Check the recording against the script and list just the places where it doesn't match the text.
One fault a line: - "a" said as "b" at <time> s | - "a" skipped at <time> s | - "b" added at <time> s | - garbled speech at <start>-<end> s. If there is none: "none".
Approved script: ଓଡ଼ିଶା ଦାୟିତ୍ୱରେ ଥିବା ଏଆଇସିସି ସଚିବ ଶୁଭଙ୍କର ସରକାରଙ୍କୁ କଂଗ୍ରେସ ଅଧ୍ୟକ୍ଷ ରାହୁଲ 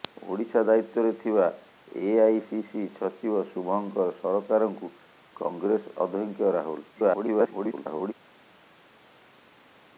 - garbled speech at 6.9-8.1 s